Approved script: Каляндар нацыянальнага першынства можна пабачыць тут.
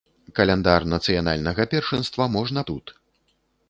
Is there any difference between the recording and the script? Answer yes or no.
yes